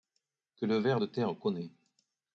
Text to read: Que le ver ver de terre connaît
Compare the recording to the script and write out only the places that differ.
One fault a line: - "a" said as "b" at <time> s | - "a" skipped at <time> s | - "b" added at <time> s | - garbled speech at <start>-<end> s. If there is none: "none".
- "ver" skipped at 1.0 s